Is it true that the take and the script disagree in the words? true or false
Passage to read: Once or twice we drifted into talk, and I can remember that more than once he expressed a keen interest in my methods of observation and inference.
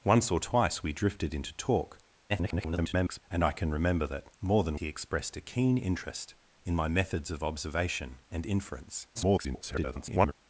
true